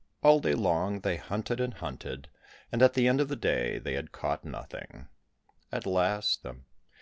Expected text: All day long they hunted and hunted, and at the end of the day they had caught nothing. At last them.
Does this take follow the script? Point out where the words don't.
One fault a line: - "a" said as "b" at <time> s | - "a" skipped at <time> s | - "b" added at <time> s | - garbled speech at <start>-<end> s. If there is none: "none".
none